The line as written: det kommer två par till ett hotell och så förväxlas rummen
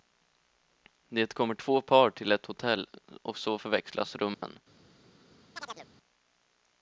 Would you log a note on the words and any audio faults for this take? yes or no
yes